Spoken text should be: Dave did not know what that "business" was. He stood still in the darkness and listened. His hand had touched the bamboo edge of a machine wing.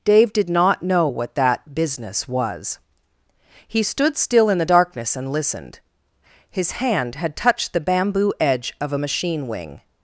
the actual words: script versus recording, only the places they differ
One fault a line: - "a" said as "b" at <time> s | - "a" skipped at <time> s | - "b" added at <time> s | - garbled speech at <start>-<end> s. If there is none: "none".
none